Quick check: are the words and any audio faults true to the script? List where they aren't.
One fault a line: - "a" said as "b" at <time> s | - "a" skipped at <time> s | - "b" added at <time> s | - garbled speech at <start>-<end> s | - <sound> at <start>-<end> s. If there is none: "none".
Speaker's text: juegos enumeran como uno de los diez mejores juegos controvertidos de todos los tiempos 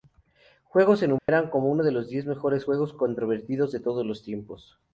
- dropout at 1.2-1.3 s